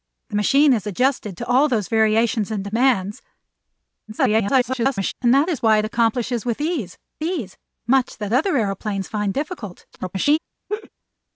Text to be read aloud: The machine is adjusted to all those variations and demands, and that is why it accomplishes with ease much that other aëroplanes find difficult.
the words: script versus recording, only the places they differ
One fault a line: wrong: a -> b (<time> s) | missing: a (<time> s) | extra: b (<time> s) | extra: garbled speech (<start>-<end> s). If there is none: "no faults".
extra: garbled speech (4.1-5.1 s)
extra: ease (7.2 s)
extra: garbled speech (9.9-10.4 s)